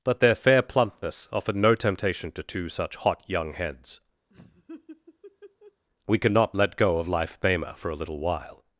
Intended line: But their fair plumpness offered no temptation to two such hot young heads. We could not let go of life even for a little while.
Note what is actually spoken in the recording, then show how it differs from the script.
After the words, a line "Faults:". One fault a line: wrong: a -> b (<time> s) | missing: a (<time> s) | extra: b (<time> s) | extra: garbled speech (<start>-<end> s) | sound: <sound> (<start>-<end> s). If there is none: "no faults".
But their fair plumpness offered no temptation to two such hot young heads. We could not let go of life bema for a little while.
Faults:
sound: laugh (4.3-5.8 s)
wrong: even -> bema (7.4 s)